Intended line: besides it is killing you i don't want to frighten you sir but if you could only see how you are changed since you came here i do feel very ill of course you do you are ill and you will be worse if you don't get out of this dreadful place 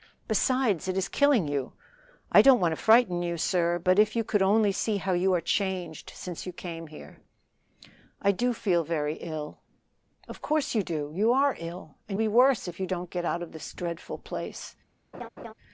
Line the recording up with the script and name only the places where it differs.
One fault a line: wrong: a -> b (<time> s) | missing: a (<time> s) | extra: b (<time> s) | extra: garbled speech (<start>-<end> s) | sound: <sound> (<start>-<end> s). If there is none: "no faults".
missing: you will (12.2 s)
sound: laugh (15.1-15.5 s)